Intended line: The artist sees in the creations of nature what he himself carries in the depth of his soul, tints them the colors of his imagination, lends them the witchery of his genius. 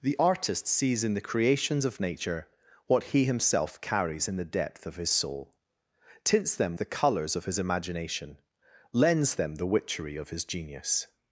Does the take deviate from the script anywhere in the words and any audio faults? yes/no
no